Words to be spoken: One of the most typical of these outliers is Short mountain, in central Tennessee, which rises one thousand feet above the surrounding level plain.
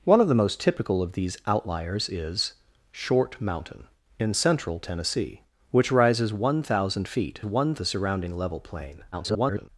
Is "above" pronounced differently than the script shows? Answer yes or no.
yes